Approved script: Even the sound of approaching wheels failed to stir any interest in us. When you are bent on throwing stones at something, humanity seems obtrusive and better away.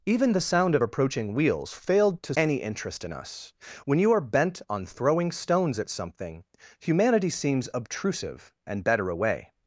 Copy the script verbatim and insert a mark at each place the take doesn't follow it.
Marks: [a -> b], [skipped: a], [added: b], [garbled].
Even the sound of approaching wheels failed to [skipped: stir] any interest in us. When you are bent on throwing stones at something, humanity seems obtrusive and better away.